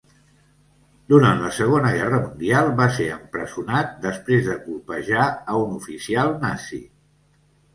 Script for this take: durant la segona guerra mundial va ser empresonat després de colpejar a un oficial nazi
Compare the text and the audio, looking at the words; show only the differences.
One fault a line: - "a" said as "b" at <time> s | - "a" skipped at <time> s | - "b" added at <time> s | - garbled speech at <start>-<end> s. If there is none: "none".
none